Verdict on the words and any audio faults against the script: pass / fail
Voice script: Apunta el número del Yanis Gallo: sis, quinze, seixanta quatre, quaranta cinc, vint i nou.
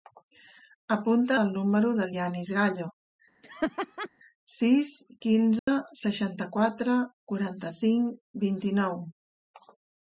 fail